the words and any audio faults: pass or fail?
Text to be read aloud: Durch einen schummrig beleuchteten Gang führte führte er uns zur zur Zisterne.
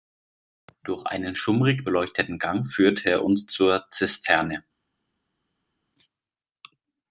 fail